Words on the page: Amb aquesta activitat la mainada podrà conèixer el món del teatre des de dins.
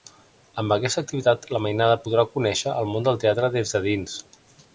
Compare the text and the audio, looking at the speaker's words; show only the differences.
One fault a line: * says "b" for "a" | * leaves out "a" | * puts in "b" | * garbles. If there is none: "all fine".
all fine